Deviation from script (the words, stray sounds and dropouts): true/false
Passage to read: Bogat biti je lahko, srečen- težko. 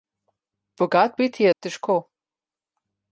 true